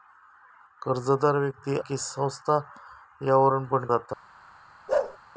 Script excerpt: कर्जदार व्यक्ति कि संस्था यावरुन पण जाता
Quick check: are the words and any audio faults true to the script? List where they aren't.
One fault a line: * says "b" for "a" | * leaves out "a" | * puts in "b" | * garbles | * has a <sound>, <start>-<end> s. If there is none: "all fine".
* has a bark, 4.9-5.2 s